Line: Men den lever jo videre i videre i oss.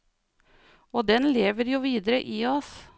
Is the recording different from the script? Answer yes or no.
yes